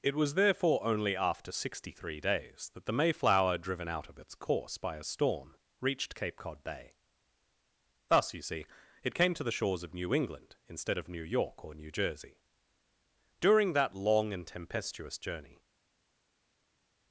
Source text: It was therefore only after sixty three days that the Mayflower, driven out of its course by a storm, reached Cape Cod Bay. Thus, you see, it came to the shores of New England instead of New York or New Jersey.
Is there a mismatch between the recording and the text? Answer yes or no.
yes